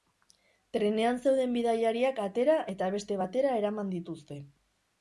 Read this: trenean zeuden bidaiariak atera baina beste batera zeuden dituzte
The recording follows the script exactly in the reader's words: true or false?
false